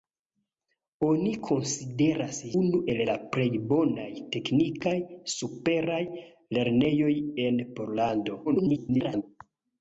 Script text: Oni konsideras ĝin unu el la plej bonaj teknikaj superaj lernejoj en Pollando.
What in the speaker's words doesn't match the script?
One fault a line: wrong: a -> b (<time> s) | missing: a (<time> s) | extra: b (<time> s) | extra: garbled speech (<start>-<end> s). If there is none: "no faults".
missing: ĝin (2.4 s)
extra: garbled speech (8.4-9.2 s)